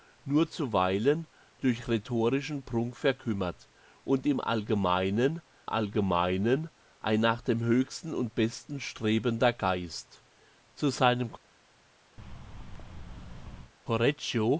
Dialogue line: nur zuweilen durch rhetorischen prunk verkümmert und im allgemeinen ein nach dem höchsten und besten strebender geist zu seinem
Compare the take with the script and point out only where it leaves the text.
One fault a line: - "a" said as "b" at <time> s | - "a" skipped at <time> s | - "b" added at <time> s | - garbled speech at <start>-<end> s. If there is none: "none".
- "allgemeinen" added at 5.6 s